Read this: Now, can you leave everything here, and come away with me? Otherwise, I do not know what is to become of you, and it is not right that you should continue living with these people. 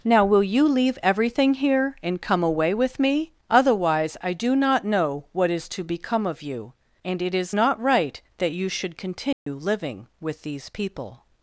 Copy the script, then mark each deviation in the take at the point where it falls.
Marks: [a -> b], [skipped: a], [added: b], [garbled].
Now, [can -> will] you leave everything here, and come away with me? Otherwise, I do not know what is to become of you, and it is not right that you should continue living with these people.